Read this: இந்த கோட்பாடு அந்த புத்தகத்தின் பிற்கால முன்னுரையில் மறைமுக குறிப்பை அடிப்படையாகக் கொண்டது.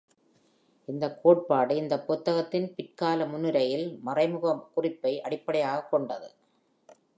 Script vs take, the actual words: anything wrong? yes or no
yes